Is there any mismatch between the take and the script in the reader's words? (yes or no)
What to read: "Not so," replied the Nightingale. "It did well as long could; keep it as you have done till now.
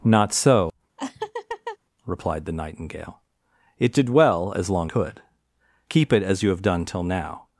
no